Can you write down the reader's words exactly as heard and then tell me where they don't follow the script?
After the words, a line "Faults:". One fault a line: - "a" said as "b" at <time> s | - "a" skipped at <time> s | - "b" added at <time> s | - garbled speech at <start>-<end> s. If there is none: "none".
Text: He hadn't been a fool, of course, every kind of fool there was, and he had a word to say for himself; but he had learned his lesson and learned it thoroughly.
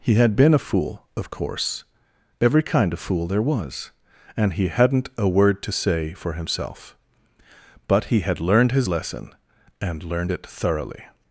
He had been a fool, of course, every kind of fool there was, and he hadn't a word to say for himself; but he had learned his lesson and learned it thoroughly.
Faults:
- "hadn't" said as "had" at 0.1 s
- "had" said as "hadn't" at 4.7 s